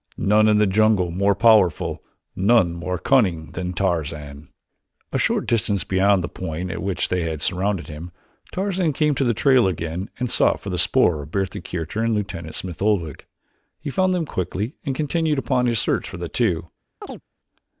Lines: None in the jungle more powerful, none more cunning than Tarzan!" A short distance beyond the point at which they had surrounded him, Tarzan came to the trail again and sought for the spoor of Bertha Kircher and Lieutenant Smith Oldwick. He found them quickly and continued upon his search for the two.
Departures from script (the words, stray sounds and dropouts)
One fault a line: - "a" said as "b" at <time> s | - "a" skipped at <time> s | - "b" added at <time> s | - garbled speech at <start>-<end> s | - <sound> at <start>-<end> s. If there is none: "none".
- chirp at 17.0-17.2 s